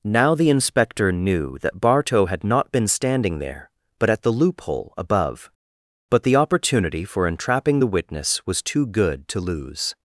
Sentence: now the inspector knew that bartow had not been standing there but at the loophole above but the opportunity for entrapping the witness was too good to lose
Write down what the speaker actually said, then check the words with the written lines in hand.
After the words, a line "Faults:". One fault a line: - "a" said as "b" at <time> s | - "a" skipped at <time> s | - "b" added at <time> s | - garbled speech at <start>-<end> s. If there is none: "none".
now the inspector knew that bartow had not been standing there but at the loophole above but the opportunity for entrapping the witness was too good to lose
Faults:
none